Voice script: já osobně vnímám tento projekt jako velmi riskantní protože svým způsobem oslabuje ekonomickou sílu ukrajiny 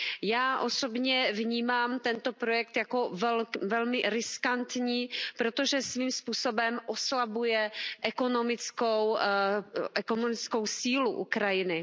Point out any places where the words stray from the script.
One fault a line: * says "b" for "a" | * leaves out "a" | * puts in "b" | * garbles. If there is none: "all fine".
all fine